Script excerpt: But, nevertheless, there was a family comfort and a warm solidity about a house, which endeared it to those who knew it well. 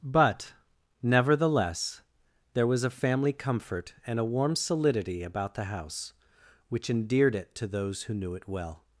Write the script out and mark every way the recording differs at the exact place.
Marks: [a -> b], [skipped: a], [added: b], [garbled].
But, nevertheless, there was a family comfort and a warm solidity about [a -> the] house, which endeared it to those who knew it well.